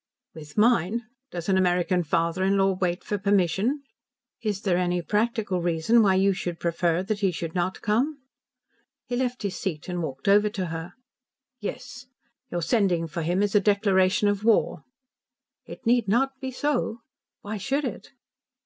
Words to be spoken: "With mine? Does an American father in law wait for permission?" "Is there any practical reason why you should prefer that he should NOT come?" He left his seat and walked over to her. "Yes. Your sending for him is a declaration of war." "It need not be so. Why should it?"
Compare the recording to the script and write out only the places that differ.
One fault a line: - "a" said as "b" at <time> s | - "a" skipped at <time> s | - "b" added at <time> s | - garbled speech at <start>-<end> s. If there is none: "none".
none